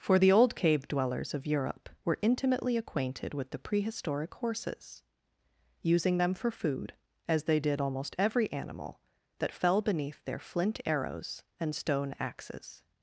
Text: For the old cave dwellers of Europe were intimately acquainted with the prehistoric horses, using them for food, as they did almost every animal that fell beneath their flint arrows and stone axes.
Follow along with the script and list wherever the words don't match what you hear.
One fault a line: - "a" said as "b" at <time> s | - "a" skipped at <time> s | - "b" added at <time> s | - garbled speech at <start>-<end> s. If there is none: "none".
none